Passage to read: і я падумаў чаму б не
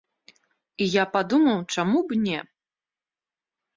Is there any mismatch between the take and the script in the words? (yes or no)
no